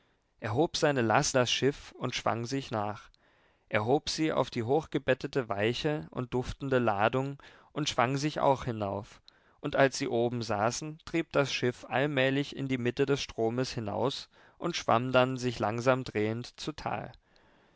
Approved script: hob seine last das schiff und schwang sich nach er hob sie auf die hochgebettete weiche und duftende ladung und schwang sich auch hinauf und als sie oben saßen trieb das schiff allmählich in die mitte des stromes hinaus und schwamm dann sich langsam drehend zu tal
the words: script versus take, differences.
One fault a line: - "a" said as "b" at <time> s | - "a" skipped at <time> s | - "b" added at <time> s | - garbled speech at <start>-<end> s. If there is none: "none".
none